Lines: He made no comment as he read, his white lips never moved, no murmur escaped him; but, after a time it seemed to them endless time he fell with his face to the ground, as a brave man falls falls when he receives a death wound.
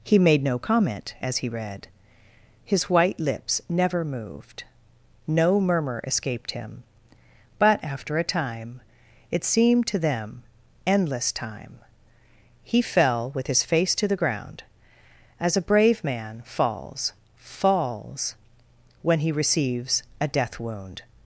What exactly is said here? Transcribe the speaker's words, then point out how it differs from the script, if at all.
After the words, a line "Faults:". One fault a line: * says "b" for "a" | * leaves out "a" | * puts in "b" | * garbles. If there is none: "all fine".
He made no comment as he read, his white lips never moved, no murmur escaped him; but, after a time it seemed to them endless time he fell with his face to the ground, as a brave man falls falls when he receives a death wound.
Faults:
all fine